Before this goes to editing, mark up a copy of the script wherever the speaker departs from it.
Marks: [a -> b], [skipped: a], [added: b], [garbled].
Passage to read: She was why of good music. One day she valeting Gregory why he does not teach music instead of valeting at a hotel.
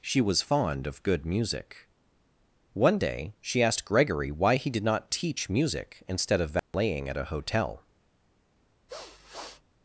She was [why -> fond] of good music. One day she [valeting -> asked] Gregory why he [does -> did] not teach music instead of valeting at a hotel.